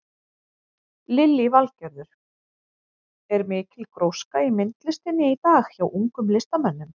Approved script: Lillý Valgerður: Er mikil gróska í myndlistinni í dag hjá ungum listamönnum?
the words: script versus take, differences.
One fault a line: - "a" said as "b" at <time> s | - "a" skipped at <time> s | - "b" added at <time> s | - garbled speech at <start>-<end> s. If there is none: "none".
none